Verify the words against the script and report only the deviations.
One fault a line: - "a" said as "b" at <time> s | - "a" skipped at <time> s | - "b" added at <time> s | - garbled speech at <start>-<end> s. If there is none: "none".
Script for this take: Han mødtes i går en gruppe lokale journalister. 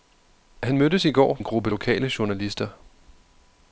none